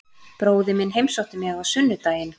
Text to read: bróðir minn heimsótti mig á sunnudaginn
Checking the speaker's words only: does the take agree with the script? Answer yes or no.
yes